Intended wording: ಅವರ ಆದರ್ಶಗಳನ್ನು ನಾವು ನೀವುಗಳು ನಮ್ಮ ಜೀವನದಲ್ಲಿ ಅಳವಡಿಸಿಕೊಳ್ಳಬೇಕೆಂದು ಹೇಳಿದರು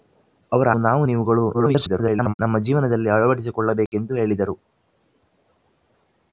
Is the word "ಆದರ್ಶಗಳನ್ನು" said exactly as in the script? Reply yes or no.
no